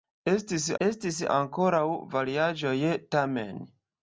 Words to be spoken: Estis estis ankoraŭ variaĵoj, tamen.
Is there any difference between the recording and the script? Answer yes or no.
no